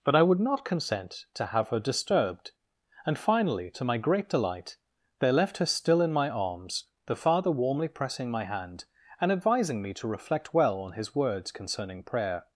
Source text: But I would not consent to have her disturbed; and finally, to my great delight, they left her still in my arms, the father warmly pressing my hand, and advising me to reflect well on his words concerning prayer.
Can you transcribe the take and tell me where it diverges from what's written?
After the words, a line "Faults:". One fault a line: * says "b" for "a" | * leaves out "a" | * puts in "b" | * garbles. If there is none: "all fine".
But I would not consent to have her disturbed; and finally, to my great delight, they left her still in my arms, the father warmly pressing my hand, and advising me to reflect well on his words concerning prayer.
Faults:
all fine